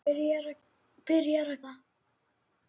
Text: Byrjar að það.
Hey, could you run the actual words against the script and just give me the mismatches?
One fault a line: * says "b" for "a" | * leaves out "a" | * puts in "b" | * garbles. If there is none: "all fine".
all fine